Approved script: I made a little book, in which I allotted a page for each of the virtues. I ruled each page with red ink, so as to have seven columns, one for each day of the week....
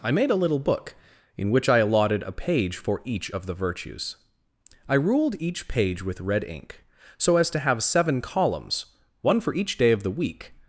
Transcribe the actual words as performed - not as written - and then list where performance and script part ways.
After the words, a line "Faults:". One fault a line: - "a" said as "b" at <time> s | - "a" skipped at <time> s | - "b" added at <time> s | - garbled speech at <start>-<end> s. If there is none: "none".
I made a little book, in which I allotted a page for each of the virtues. I ruled each page with red ink, so as to have seven columns, one for each day of the week....
Faults:
none